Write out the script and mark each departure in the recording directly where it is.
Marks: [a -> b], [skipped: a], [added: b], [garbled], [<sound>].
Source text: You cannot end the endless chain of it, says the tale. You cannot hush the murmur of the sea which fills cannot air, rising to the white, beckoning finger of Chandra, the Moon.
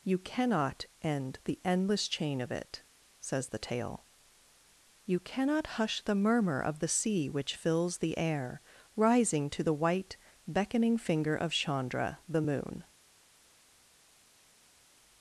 You cannot end the endless chain of it, says the tale. You cannot hush the murmur of the sea which fills [cannot -> the] air, rising to the white, beckoning finger of Chandra, the Moon.